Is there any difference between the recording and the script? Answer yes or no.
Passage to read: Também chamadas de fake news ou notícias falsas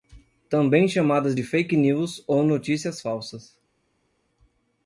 no